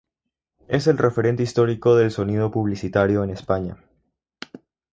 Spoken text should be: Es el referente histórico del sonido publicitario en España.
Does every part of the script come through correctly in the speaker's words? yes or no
yes